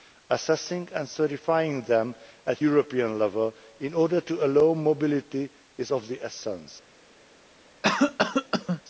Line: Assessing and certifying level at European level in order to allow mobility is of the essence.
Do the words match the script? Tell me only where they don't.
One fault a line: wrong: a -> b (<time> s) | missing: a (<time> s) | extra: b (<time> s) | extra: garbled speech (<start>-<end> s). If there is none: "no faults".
wrong: level -> them (1.8 s)